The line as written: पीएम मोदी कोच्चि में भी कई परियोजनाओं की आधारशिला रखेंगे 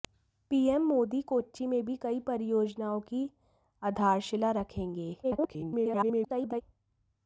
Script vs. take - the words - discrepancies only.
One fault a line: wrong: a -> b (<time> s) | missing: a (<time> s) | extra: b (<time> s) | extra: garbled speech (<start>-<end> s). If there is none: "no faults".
extra: garbled speech (5.2-6.6 s)